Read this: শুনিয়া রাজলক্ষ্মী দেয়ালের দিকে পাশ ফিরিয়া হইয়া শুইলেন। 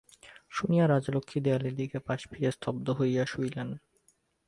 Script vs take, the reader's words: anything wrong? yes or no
yes